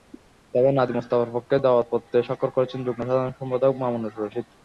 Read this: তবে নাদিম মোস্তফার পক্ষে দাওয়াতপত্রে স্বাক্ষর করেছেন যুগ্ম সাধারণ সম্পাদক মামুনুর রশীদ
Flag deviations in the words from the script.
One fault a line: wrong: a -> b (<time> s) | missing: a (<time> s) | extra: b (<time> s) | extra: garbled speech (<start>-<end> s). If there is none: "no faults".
no faults